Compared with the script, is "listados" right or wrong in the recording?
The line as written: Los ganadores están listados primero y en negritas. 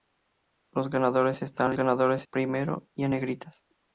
wrong